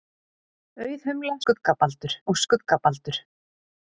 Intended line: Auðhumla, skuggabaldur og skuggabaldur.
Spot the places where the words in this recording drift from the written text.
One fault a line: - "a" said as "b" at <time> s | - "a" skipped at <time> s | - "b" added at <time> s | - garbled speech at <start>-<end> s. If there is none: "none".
none